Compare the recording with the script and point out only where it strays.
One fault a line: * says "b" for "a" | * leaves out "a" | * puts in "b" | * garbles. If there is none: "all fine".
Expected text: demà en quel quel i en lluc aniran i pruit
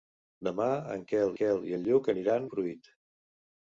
all fine